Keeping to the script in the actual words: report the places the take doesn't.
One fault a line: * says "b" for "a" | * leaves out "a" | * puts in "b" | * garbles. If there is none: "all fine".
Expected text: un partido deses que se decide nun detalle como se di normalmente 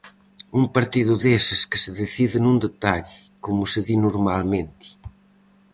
all fine